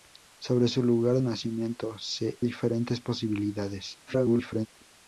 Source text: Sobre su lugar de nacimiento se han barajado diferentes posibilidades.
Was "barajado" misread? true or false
true